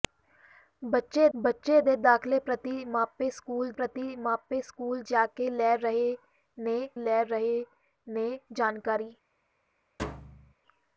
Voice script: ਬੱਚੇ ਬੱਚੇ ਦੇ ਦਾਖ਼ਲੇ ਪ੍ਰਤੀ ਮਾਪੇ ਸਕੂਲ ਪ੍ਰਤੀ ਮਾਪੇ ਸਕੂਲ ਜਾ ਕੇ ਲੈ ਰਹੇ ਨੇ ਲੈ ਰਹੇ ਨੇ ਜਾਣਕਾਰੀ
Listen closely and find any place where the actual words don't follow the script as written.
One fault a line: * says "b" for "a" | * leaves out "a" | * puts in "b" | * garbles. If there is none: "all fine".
all fine